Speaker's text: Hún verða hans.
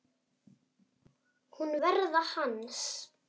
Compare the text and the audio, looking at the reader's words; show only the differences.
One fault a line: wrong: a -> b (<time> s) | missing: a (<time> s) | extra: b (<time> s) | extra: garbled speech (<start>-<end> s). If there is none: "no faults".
no faults